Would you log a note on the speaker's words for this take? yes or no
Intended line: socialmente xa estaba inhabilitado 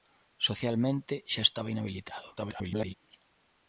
yes